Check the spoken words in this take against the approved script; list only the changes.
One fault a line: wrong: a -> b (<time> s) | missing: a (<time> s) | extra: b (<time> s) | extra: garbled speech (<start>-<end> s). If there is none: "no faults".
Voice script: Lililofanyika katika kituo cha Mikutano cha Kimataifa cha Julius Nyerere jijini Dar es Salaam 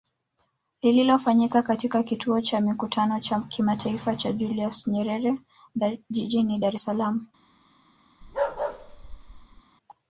no faults